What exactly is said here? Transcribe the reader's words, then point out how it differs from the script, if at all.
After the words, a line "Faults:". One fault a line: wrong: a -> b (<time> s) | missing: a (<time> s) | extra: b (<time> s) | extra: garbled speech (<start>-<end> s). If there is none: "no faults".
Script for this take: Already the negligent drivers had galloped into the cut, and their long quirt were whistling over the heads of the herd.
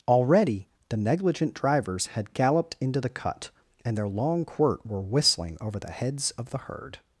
Already the negligent drivers had galloped into the cut, and their long quirt were whistling over the heads of the herd.
Faults:
no faults